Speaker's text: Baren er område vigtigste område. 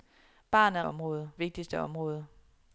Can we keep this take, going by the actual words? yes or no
yes